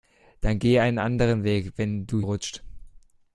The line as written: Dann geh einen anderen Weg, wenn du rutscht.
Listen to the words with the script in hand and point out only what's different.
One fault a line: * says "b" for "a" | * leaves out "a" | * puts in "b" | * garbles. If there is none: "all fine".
all fine